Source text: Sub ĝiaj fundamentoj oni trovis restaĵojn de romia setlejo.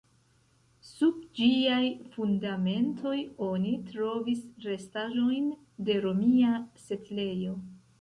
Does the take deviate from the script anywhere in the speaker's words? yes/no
no